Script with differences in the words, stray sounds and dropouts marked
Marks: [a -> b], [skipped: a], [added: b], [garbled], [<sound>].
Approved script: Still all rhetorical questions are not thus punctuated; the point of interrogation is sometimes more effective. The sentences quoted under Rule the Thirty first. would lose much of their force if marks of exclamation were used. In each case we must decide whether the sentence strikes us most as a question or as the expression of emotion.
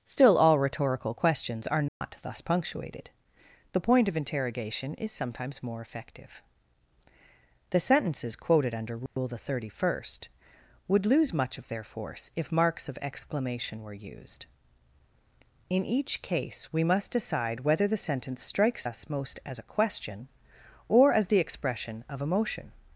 Still all rhetorical questions are not [dropout] thus punctuated; the point of interrogation is sometimes more effective. The sentences quoted under Rule [dropout] the Thirty first. would lose much of their force if marks of exclamation were used. In each case we must decide whether the sentence strikes us most as a question or as the expression of emotion.